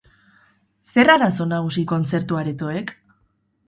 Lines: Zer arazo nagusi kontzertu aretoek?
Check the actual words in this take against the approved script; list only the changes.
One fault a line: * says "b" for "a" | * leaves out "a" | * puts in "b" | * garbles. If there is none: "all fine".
all fine